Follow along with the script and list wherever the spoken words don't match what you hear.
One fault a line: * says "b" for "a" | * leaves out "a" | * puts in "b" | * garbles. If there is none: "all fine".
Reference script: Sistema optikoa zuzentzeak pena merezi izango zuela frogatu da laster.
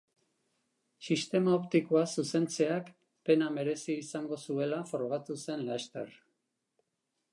* says "zen" for "da"